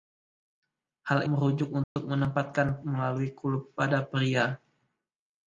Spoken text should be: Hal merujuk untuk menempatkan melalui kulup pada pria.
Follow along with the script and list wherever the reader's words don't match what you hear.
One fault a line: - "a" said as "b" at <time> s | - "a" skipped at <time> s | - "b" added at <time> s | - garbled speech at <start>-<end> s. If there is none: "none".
none